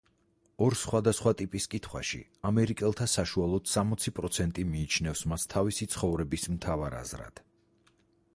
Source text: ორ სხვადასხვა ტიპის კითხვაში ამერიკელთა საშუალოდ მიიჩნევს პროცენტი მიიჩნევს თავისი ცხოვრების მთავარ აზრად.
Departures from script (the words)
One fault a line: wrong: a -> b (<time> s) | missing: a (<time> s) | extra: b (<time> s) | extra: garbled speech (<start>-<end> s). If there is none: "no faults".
wrong: მიიჩნევს -> სამოცი (3.7 s)
extra: მას (5.3 s)